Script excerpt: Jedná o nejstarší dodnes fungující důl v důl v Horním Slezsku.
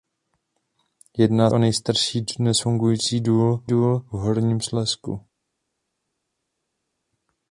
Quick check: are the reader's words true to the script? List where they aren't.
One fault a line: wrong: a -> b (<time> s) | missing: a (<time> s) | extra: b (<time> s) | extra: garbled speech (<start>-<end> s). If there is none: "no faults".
no faults